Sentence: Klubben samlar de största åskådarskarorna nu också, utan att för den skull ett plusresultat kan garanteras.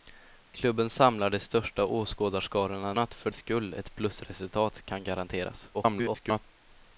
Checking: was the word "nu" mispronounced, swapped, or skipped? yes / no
yes